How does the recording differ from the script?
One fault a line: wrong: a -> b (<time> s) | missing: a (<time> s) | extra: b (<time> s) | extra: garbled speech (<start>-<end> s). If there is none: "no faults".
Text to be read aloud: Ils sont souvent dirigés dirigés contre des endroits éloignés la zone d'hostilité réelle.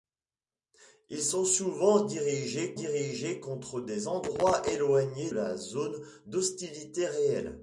no faults